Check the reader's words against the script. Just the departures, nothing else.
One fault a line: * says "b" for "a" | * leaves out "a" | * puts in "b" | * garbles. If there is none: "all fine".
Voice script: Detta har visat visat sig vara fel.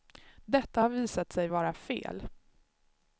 * leaves out "visat"